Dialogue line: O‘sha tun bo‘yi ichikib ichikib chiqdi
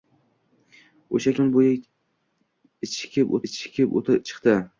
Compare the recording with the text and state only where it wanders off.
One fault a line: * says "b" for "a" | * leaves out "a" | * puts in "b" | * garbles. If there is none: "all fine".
all fine